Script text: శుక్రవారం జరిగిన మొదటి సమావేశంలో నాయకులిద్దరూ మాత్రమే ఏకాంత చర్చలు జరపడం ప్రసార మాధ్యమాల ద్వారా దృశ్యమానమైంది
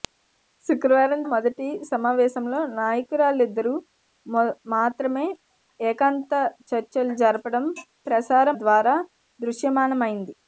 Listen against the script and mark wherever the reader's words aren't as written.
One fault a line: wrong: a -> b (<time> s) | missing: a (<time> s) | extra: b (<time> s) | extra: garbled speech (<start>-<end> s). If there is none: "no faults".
missing: జరిగిన (1.2 s)
missing: మాధ్యమాల (8.5 s)